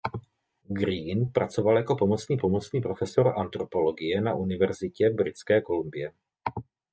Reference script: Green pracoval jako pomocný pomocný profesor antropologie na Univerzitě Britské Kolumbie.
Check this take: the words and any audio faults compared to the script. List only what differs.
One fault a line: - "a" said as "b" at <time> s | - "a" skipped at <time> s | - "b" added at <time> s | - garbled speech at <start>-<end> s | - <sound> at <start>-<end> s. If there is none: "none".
none